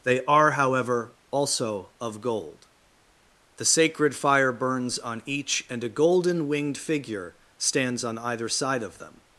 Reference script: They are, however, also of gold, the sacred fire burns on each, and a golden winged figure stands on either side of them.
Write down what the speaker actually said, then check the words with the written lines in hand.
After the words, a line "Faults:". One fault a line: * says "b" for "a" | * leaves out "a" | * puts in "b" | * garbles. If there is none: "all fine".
They are, however, also of gold, the sacred fire burns on each, and a golden winged figure stands on either side of them.
Faults:
all fine